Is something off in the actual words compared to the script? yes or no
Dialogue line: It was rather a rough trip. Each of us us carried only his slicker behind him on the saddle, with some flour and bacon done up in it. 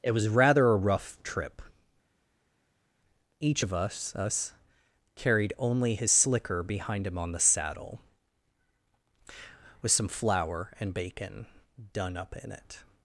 no